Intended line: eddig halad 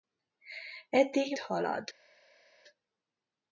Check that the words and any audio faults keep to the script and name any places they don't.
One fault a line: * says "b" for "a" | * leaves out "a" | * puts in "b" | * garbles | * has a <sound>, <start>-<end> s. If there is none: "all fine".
all fine